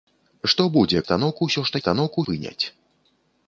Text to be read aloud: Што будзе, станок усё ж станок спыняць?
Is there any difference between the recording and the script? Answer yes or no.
no